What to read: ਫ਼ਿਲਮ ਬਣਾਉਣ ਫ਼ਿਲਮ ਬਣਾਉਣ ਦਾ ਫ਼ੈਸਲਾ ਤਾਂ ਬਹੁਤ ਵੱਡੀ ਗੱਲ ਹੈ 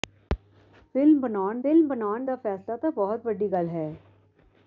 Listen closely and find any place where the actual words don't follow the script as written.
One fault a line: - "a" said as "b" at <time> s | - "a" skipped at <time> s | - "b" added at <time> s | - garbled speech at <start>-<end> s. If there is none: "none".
none